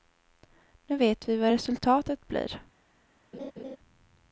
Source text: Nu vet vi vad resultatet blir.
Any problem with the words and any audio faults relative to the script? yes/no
yes